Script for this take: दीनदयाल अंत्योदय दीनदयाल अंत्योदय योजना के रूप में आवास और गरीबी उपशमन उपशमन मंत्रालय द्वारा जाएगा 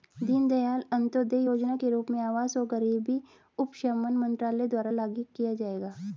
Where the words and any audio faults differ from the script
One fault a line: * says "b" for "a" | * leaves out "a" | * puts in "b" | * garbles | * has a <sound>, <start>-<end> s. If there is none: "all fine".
* leaves out "दीनदयाल अंत्योदय"
* leaves out "उपशमन"
* puts in "लागू किया"